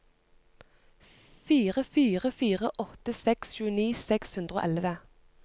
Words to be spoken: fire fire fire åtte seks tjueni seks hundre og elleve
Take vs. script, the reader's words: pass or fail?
pass